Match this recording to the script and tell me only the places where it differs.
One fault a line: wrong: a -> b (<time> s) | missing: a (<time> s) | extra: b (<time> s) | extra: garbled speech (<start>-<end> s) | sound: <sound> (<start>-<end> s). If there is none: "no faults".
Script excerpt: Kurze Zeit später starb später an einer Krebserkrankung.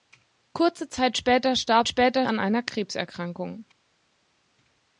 no faults